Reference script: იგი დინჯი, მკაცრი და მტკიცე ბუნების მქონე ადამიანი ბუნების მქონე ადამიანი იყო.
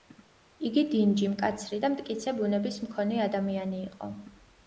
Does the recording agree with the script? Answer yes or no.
no